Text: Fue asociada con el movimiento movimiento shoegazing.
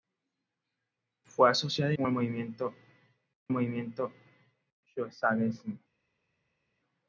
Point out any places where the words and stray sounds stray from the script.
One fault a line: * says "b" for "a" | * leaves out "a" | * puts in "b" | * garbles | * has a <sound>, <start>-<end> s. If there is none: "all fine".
all fine